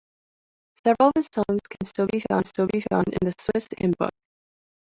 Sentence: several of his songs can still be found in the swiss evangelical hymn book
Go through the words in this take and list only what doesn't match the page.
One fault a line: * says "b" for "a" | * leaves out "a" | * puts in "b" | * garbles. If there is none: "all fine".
* puts in "still be found"
* leaves out "evangelical"